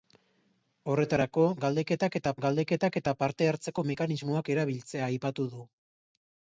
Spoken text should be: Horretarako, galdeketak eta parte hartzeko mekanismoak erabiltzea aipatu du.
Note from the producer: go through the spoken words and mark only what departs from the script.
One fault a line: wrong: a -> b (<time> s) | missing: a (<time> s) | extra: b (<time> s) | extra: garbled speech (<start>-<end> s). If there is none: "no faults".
extra: galdeketak eta (2.5 s)